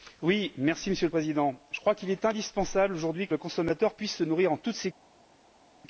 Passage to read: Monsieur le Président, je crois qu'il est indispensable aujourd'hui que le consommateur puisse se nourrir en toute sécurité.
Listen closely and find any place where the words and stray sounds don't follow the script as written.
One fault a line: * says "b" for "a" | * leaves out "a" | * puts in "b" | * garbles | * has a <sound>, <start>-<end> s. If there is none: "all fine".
all fine